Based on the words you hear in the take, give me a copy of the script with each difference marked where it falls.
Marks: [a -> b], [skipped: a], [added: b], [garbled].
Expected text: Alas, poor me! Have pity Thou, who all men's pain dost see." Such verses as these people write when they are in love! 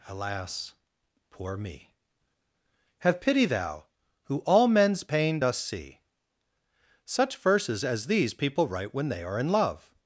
Alas, poor me! Have pity Thou, who all men's pain dost see." Such verses as these people write when they are in love!